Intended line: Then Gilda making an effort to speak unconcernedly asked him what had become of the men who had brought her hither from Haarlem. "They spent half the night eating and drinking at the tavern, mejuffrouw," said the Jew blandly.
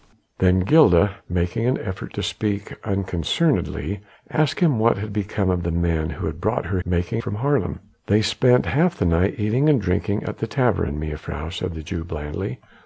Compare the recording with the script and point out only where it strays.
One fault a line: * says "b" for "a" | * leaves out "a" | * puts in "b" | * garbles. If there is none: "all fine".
* says "making" for "hither"